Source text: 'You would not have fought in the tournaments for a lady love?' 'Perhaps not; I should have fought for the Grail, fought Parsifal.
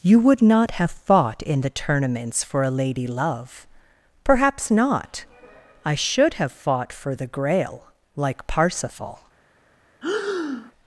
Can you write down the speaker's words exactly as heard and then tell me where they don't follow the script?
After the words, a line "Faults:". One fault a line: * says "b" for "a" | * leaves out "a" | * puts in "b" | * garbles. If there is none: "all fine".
'You would not have fought in the tournaments for a lady love?' 'Perhaps not; I should have fought for the Grail, like Parsifal.
Faults:
* says "like" for "fought"